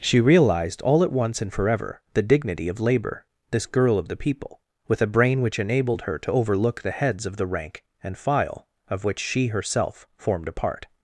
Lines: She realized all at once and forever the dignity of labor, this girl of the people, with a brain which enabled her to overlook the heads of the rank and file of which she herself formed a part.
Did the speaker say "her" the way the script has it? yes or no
yes